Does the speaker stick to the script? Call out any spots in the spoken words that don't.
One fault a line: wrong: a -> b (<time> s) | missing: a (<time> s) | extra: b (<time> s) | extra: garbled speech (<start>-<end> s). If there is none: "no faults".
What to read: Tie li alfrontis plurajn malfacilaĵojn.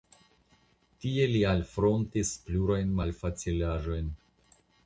no faults